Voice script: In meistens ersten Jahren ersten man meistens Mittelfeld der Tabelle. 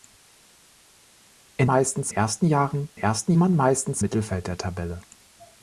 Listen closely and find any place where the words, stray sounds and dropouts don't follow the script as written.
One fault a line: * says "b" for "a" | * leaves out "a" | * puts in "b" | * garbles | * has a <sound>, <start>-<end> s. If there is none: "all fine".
all fine